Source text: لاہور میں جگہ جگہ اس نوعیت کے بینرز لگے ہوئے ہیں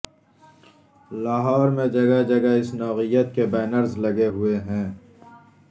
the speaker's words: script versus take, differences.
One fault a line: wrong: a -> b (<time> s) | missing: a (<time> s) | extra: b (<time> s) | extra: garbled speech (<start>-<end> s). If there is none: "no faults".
no faults